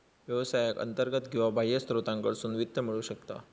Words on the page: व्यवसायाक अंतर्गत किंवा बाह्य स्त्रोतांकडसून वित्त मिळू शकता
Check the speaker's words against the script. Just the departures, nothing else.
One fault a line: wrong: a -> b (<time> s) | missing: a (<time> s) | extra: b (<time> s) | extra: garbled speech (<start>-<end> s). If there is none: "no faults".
no faults